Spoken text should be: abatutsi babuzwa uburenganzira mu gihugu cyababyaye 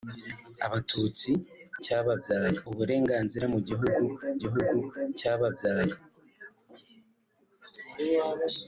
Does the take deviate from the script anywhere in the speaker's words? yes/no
yes